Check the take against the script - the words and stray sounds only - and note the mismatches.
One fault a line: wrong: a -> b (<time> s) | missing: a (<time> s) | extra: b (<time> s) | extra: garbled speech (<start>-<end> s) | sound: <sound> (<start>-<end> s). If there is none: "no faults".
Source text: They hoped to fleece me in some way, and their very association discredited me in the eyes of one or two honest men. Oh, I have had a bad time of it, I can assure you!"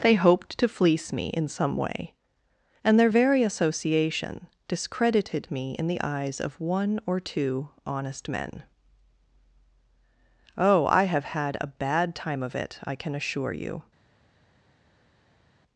no faults